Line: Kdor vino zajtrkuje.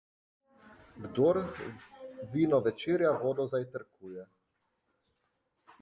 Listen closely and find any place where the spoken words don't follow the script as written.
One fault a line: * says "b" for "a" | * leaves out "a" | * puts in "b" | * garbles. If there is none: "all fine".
* puts in "večerja vodo"